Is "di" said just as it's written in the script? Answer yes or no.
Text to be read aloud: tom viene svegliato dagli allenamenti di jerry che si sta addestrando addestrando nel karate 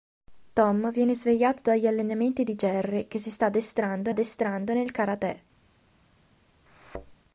yes